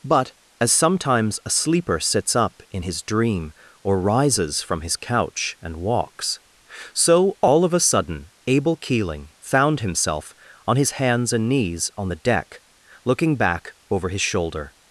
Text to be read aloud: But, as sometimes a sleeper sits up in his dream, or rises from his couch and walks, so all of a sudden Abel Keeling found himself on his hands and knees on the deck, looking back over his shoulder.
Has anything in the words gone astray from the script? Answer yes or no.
no